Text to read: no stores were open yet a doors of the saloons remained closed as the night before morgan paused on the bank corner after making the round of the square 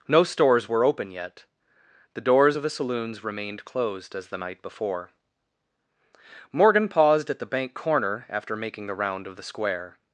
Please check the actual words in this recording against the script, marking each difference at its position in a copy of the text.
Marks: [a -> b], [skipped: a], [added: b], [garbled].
no stores were open yet [a -> the] doors of the saloons remained closed as the night before morgan paused [on -> at] the bank corner after making the round of the square